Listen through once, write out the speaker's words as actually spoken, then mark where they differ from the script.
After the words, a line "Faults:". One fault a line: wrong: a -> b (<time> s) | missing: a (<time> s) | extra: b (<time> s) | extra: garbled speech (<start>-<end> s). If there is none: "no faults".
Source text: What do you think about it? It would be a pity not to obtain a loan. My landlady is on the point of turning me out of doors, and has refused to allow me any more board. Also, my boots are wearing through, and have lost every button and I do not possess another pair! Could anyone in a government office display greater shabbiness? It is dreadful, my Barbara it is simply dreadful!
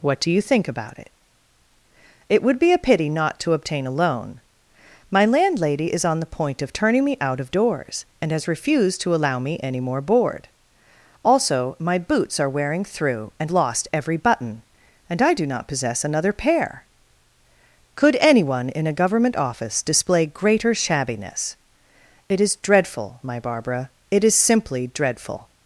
What do you think about it? It would be a pity not to obtain a loan. My landlady is on the point of turning me out of doors, and has refused to allow me any more board. Also, my boots are wearing through, and lost every button and I do not possess another pair! Could anyone in a government office display greater shabbiness? It is dreadful, my Barbara it is simply dreadful!
Faults:
missing: have (13.5 s)